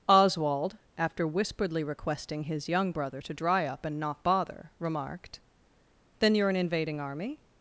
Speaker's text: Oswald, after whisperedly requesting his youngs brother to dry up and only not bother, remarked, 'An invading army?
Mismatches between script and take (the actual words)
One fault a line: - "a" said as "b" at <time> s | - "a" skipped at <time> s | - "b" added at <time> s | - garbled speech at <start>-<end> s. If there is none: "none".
- "youngs" said as "young" at 2.7 s
- "only" skipped at 4.0 s
- "Then you're" added at 6.2 s